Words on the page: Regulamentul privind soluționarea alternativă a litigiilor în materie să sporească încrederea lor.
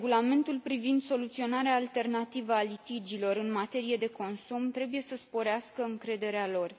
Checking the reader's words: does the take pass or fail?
fail